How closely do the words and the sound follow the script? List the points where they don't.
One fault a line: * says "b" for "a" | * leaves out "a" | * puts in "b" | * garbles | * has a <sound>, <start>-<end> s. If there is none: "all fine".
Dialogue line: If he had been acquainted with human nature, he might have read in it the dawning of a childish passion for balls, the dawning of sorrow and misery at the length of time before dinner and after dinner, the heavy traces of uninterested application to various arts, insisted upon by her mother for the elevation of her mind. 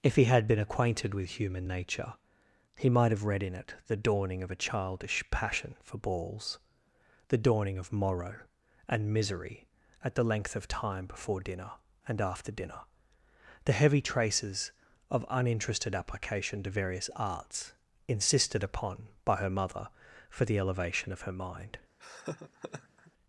* says "morrow" for "sorrow"
* has a laugh, 22.0-23.1 s